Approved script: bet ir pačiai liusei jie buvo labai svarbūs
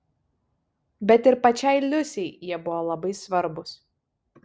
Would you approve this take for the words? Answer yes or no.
yes